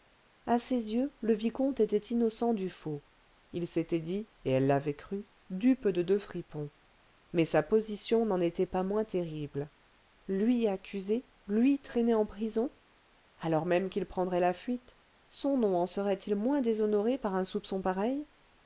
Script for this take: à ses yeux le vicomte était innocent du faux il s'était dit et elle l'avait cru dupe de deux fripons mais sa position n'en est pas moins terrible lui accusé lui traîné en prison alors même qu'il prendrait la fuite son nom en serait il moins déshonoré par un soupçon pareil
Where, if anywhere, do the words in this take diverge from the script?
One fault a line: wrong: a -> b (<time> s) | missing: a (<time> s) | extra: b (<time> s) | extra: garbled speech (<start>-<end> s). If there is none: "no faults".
wrong: est -> était (8.4 s)